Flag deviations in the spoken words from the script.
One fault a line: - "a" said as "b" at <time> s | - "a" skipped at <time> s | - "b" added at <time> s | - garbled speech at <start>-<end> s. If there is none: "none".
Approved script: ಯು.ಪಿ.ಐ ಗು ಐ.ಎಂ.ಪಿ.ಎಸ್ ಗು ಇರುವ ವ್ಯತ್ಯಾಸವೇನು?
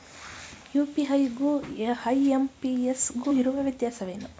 none